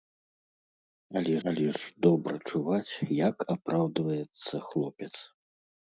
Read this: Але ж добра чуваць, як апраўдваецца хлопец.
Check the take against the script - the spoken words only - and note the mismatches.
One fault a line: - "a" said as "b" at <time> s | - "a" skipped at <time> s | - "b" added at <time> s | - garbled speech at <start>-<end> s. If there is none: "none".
- "але" added at 1.5 s